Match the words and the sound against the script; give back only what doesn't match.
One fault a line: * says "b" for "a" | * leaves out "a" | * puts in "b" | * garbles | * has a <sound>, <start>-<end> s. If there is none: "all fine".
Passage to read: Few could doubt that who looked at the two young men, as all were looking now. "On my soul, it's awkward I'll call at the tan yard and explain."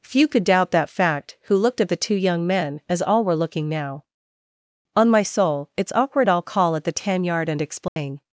* puts in "fact"
* has a dropout, 7.9-8.0 s